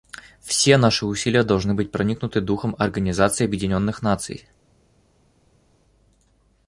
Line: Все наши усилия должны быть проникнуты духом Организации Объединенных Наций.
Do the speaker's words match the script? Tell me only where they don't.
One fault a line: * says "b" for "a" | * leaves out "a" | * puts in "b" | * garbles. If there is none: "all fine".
all fine